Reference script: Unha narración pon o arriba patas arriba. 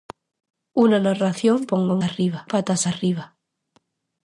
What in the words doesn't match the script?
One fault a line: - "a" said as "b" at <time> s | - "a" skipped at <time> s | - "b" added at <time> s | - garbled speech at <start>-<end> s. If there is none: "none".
none